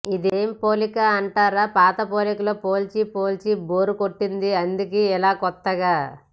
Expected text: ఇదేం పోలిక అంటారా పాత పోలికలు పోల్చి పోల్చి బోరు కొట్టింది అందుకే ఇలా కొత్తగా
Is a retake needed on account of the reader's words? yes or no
no